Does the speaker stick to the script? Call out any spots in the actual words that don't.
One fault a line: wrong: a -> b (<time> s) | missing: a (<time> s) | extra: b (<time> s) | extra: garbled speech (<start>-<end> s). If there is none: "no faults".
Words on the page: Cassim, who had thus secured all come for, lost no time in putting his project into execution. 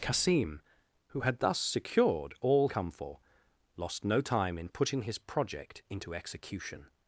no faults